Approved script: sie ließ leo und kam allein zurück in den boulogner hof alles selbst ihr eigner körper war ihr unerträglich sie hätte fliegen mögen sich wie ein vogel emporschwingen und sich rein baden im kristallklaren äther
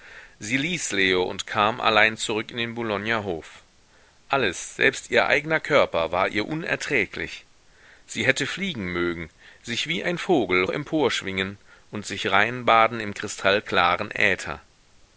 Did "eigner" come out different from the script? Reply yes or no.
no